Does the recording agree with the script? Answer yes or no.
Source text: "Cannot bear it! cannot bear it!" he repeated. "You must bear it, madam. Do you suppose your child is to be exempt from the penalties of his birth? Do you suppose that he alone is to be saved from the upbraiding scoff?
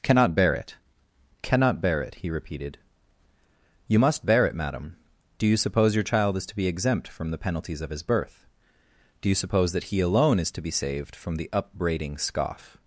yes